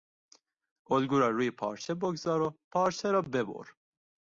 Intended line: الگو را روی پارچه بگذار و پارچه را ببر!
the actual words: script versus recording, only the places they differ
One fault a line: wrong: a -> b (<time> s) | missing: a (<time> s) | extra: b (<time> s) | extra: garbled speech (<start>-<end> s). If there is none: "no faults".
no faults